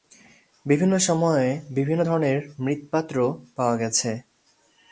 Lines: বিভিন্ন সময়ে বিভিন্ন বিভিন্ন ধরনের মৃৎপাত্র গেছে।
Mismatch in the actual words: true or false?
true